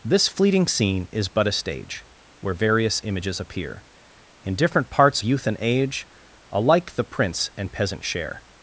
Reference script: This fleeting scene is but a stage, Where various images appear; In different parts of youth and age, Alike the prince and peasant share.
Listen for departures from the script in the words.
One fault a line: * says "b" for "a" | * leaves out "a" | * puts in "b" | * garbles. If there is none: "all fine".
* leaves out "of"